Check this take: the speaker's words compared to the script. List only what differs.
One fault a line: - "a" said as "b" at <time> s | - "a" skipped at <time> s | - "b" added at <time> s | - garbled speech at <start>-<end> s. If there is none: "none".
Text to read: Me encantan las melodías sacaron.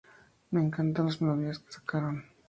- "que" added at 1.6 s